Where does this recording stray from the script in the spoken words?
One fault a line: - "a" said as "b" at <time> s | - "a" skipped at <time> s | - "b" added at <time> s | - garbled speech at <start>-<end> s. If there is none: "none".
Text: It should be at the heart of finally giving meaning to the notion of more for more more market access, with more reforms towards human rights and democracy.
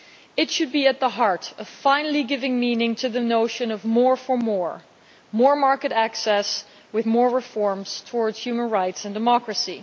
none